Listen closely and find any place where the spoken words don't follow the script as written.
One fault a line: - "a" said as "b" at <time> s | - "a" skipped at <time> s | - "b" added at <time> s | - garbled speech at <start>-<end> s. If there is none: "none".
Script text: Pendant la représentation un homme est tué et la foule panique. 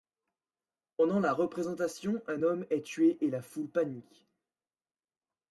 none